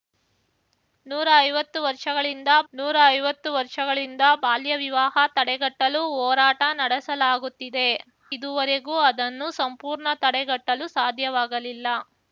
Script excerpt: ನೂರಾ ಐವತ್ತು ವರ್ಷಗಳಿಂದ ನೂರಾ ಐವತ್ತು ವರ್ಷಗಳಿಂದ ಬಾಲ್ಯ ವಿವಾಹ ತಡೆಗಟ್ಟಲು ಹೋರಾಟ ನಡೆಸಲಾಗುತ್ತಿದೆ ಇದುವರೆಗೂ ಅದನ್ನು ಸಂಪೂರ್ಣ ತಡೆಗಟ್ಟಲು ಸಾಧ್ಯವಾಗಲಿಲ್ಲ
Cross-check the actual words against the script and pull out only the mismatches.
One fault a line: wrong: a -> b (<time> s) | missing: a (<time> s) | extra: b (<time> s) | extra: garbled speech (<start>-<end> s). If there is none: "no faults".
no faults